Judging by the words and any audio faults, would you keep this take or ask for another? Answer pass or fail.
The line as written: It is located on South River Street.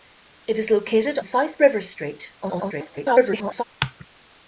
fail